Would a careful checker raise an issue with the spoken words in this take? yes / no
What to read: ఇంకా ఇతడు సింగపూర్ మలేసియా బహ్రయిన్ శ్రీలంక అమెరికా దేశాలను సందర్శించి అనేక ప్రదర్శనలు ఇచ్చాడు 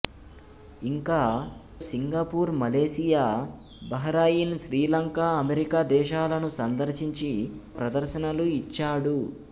yes